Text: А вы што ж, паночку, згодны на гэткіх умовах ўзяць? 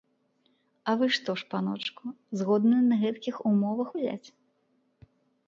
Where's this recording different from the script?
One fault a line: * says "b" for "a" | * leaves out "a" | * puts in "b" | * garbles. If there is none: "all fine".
all fine